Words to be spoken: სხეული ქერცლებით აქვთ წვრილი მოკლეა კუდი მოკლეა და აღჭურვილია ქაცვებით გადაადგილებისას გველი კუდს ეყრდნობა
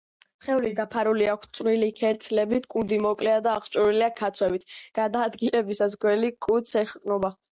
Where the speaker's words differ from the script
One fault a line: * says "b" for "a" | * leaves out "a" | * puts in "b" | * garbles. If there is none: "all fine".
* says "დაფარული" for "ქერცლებით"
* says "ქერცლებით" for "მოკლეა"